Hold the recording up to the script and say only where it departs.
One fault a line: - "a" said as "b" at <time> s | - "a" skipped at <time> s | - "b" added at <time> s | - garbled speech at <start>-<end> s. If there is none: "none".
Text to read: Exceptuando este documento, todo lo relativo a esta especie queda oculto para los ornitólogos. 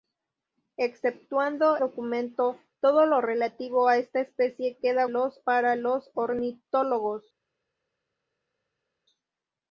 - "este" skipped at 1.8 s
- "oculto" said as "los" at 5.1 s